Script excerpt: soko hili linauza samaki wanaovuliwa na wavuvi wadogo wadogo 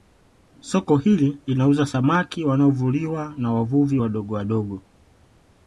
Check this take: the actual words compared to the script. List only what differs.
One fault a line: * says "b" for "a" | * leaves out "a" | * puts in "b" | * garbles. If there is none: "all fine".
all fine